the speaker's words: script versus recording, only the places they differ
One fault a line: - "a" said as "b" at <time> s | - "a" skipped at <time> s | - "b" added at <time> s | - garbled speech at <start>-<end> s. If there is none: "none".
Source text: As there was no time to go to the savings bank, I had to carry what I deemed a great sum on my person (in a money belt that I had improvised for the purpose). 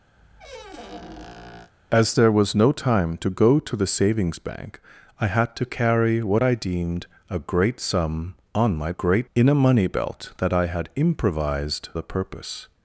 - "person" said as "great" at 8.9 s
- "for" skipped at 11.9 s